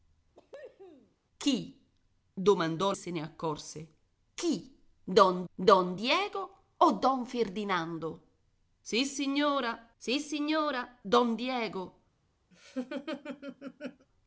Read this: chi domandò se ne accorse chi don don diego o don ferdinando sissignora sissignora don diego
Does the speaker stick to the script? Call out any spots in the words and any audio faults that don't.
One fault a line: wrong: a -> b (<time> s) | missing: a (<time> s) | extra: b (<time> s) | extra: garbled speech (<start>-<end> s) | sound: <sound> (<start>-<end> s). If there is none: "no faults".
sound: cough (0.3-1.2 s)
sound: laugh (12.5-14.1 s)